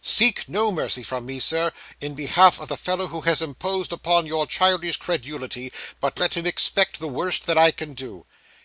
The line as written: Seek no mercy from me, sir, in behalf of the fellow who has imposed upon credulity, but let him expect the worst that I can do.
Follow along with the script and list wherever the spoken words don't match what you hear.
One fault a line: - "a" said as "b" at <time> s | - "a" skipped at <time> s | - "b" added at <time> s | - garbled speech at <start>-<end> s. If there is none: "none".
- "your childish" added at 4.2 s